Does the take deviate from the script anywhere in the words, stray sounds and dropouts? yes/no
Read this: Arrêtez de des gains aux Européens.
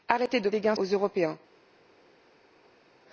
no